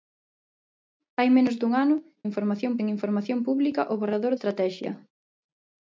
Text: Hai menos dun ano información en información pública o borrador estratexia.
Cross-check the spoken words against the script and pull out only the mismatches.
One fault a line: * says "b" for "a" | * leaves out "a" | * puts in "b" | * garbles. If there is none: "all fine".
all fine